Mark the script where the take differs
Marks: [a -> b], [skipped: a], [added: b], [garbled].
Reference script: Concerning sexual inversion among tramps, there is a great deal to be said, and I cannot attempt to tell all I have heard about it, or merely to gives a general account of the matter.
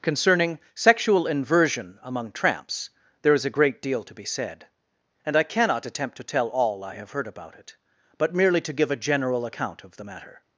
Concerning sexual inversion among tramps, there is a great deal to be said, and I cannot attempt to tell all I have heard about it, [or -> but] merely to [gives -> give] a general account of the matter.